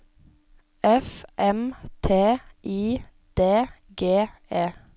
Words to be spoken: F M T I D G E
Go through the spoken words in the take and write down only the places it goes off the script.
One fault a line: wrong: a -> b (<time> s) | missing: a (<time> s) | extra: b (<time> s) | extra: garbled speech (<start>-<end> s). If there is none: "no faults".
no faults